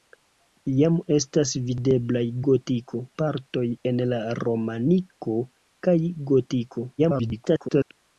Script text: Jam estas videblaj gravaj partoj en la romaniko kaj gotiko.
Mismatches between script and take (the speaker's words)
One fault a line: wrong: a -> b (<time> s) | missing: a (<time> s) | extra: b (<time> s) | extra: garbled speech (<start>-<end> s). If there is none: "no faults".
wrong: gravaj -> gotiko (2.5 s)
extra: garbled speech (7.0-7.9 s)